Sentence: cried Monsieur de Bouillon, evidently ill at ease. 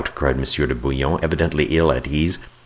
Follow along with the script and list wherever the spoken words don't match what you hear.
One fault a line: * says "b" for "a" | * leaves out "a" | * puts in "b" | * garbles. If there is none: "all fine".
all fine